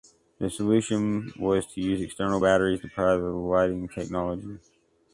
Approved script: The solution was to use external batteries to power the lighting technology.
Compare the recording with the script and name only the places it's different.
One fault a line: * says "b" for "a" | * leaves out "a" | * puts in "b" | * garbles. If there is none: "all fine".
all fine